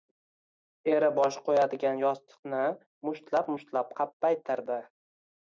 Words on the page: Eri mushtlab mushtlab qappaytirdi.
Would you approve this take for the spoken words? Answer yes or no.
no